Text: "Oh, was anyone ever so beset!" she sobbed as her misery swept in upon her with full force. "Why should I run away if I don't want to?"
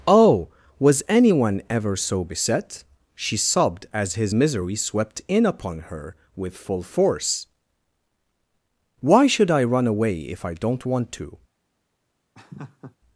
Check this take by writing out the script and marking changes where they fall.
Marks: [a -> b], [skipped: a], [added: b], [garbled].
"Oh, was anyone ever so beset!" she sobbed as [her -> his] misery swept in upon her with full force. "Why should I run away if I don't want to?"